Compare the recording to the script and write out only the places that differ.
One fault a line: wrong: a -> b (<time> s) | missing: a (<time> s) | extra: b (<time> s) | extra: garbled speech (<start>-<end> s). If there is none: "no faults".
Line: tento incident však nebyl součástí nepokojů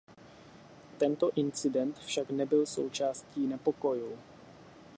no faults